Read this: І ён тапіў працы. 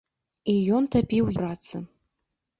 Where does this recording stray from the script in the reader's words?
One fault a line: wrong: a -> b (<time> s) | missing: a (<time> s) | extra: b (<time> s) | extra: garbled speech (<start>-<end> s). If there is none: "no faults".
no faults